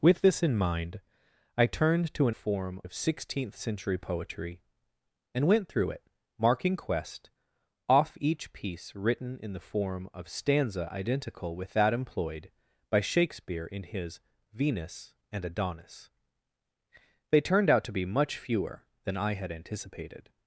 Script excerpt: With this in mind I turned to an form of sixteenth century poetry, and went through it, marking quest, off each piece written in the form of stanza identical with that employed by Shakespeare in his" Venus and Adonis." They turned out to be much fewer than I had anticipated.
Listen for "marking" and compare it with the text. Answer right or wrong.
right